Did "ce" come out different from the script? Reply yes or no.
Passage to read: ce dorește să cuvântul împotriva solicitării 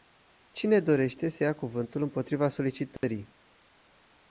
yes